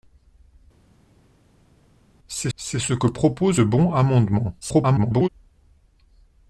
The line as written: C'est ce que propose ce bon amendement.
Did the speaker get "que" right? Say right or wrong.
right